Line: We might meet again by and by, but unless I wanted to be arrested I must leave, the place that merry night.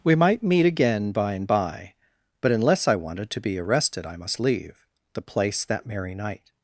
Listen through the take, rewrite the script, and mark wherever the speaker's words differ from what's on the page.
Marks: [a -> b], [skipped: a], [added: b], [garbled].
We might meet again by and by, but unless I wanted to be arrested I must leave, the place that merry night.